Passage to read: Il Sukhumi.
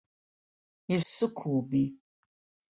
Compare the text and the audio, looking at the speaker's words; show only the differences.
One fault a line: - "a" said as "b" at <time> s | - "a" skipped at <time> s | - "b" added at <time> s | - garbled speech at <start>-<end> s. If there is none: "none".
none